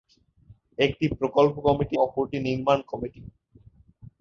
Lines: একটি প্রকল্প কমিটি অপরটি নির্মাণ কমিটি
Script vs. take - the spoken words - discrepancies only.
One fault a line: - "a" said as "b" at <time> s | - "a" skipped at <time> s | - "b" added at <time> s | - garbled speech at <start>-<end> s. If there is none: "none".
none